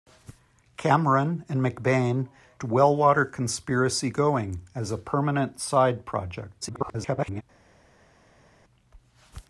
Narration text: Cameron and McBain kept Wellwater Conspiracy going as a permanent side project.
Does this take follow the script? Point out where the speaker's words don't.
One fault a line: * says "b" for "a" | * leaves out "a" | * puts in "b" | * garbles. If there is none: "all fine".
* leaves out "kept"
* garbles